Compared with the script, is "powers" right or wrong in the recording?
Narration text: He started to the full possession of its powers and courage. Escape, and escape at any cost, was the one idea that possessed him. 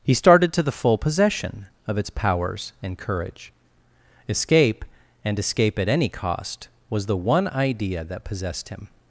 right